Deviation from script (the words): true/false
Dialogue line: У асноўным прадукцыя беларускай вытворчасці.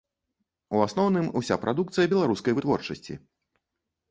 true